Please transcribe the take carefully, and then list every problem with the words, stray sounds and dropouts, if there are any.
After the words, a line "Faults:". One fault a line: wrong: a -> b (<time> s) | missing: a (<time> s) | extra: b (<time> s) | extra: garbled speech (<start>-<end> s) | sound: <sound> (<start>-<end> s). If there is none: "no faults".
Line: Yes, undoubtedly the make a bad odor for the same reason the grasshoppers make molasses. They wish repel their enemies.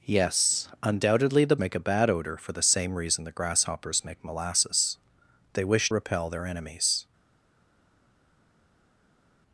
Yes, undoubtedly the make a bad odor for the same reason the grasshoppers make molasses. They wish repel their enemies.
Faults:
no faults